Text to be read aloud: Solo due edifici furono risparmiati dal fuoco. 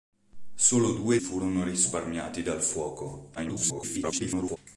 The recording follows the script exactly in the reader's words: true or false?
false